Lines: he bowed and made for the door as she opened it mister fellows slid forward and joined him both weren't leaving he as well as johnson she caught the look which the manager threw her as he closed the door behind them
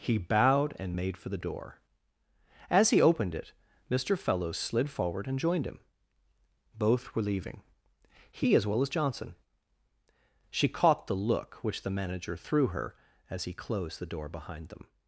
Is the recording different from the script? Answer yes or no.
yes